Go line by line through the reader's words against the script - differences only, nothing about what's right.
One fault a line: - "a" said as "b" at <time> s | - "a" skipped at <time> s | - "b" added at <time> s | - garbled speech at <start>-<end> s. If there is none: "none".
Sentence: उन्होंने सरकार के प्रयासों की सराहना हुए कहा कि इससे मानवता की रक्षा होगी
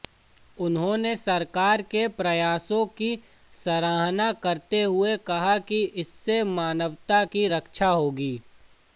- "करते" added at 4.4 s